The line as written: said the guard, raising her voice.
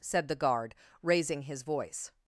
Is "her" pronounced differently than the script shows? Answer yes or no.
yes